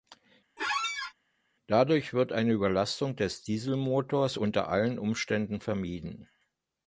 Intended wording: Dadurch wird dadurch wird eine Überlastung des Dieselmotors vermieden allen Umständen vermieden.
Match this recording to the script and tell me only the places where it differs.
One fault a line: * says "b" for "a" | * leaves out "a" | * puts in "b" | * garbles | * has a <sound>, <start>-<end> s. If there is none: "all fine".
* has a squeak, 0.6-1.1 s
* leaves out "dadurch wird"
* says "unter" for "vermieden"